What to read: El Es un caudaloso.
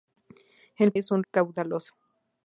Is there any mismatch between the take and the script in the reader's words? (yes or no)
no